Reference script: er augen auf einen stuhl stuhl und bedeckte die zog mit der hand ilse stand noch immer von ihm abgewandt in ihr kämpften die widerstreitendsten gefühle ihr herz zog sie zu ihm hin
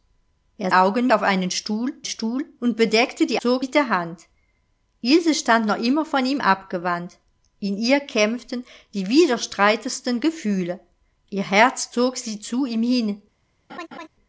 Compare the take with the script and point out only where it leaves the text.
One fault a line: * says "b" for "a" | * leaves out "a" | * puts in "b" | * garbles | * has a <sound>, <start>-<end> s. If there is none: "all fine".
* has a laugh, 13.7-14.1 s